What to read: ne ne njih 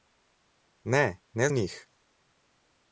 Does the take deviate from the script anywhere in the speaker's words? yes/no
no